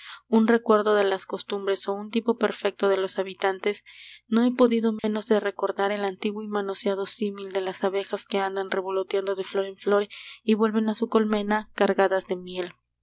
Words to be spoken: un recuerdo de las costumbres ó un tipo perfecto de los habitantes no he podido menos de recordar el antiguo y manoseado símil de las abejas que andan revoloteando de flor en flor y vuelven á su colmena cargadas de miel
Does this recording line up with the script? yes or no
yes